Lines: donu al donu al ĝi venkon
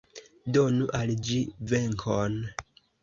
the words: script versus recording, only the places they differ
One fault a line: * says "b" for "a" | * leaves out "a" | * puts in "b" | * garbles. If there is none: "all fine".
* leaves out "donu al"